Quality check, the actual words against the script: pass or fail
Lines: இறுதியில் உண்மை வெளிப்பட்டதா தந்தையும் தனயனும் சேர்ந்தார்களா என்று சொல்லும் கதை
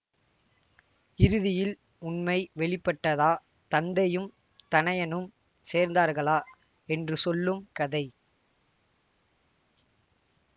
pass